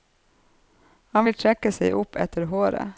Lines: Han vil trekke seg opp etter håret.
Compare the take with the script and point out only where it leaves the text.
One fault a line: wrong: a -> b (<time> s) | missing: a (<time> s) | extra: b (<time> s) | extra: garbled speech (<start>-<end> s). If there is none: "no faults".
no faults